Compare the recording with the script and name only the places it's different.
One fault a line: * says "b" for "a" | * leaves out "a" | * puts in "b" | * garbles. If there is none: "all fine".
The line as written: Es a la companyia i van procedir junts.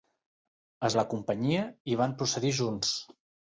all fine